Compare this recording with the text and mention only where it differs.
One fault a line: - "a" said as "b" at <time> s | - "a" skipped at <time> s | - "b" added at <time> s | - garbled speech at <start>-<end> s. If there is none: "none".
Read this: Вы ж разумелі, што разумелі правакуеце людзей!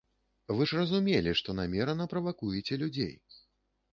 - "разумелі" said as "намерана" at 1.6 s